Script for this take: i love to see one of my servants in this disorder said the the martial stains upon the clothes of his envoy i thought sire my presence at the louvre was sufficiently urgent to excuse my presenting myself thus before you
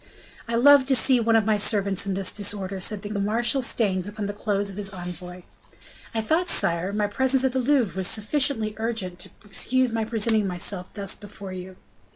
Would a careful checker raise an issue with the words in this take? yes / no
no